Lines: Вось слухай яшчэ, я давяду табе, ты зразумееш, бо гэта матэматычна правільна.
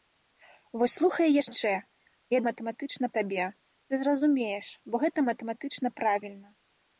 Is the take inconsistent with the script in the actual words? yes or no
yes